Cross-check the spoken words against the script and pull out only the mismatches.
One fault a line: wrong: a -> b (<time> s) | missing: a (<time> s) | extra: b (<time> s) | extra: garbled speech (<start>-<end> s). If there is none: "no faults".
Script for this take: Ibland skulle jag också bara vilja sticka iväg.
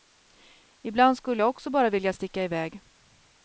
no faults